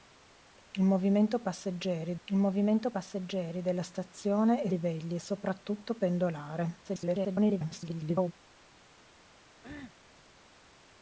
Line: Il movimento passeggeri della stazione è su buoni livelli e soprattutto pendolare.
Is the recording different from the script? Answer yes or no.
yes